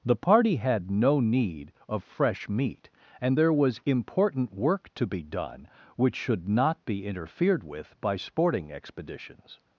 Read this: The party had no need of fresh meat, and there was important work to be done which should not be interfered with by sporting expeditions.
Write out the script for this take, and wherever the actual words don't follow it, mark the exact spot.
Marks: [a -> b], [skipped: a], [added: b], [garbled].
The party had no need of fresh meat, and there was important work to be done which should not be interfered with by sporting expeditions.